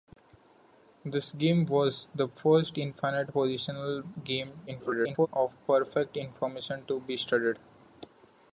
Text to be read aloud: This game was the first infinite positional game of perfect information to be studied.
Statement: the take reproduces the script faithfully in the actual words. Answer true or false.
false